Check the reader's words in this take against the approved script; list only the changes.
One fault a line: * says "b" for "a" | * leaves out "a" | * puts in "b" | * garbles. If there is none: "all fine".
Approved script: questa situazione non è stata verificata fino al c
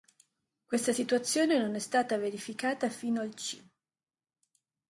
all fine